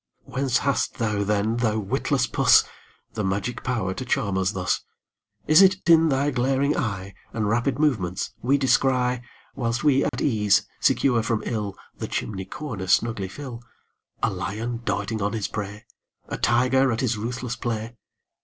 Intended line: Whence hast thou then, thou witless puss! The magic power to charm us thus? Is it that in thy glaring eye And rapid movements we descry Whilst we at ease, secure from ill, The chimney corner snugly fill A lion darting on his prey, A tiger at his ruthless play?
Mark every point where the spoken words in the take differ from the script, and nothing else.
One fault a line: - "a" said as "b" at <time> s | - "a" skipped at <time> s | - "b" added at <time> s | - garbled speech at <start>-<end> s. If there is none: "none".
- "that" skipped at 5.8 s